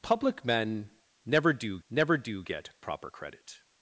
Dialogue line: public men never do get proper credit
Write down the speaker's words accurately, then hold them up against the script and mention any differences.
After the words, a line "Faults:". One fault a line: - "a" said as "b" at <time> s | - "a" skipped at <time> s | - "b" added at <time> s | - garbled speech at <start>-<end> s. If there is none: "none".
public men never do never do get proper credit
Faults:
- "never do" added at 1.9 s